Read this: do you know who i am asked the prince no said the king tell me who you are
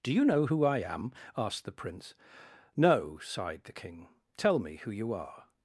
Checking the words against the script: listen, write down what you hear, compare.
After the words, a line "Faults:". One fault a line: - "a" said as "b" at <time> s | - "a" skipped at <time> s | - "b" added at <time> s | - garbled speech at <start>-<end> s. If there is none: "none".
do you know who i am asked the prince no sighed the king tell me who you are
Faults:
- "said" said as "sighed" at 3.2 s